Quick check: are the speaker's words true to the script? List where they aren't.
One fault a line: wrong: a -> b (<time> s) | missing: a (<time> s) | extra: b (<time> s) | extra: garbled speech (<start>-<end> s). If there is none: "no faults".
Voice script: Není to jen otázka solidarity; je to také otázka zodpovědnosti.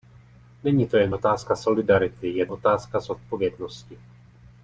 missing: to také (2.5 s)